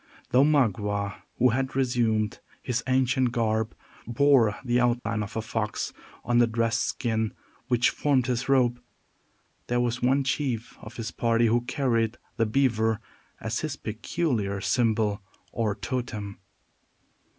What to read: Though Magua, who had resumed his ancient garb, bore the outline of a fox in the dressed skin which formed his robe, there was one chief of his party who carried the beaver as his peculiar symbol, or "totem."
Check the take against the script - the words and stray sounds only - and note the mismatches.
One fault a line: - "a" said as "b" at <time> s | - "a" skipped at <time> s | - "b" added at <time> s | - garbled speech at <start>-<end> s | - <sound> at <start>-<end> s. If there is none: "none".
- dropout at 5.0-5.1 s
- "in" said as "on" at 6.2 s